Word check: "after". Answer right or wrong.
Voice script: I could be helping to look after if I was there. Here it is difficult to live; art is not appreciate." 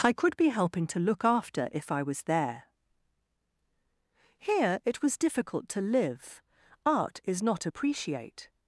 right